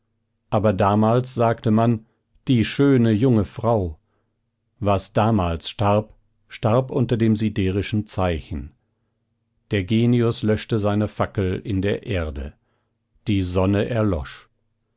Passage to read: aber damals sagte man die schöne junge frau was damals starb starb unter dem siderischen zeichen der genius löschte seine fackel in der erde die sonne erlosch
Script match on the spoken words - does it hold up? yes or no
yes